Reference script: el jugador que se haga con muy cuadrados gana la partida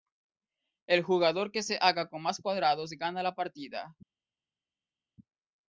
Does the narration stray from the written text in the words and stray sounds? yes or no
yes